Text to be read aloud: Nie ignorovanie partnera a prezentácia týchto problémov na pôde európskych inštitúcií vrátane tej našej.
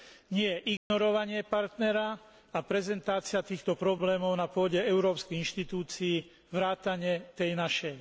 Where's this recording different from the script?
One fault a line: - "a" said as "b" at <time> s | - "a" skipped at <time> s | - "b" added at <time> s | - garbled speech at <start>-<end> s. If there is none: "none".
none